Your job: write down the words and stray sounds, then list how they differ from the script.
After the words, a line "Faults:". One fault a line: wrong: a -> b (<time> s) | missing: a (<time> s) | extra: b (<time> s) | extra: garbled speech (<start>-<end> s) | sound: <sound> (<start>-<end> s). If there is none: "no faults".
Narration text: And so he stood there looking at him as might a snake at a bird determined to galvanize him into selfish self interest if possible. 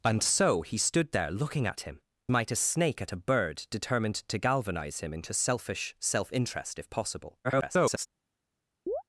And so he stood there looking at him might a snake at a bird determined to galvanize him into selfish self interest if possible. [garbled]
Faults:
missing: as (2.0 s)
extra: garbled speech (7.4-8.1 s)
sound: chirp (8.9-9.0 s)